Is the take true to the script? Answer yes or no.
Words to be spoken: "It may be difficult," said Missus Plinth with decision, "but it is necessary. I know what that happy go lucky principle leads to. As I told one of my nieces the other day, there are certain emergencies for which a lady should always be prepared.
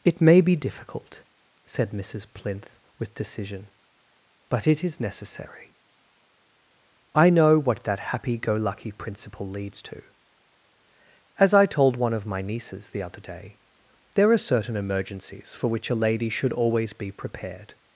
yes